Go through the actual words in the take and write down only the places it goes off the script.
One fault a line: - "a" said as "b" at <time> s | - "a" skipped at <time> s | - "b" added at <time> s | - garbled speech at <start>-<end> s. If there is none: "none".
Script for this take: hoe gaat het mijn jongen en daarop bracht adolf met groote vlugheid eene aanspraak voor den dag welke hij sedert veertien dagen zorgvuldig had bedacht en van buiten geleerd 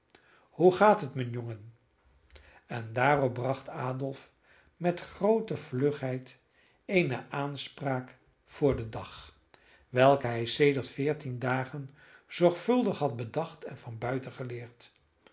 none